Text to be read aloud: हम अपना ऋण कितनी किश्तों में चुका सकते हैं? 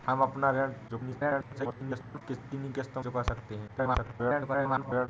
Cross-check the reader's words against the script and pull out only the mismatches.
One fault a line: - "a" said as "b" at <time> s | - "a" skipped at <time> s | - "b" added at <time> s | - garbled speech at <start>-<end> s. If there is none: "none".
- garbled speech at 0.9-2.2 s
- "में" skipped at 3.0 s
- garbled speech at 3.7-5.1 s